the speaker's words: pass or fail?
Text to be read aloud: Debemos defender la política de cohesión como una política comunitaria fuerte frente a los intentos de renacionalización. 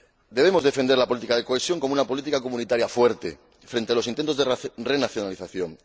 pass